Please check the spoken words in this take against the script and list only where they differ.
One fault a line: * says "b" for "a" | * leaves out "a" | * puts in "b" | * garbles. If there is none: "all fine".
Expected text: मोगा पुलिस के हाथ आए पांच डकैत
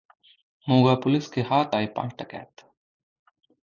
all fine